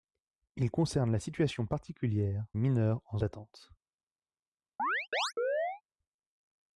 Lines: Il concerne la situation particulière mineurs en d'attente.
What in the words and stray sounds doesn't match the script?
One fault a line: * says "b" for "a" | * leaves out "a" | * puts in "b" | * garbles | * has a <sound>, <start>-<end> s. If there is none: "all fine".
* has a chirp, 4.8-5.8 s